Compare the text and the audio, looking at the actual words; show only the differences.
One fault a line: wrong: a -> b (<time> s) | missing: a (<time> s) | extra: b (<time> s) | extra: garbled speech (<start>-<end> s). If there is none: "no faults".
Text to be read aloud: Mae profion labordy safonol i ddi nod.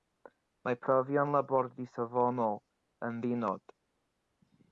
wrong: i -> yn (3.1 s)